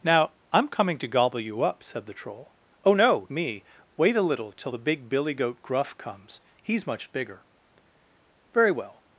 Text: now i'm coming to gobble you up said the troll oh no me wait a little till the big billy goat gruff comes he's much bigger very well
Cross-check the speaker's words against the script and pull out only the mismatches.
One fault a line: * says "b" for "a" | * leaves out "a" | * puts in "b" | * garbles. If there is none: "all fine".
all fine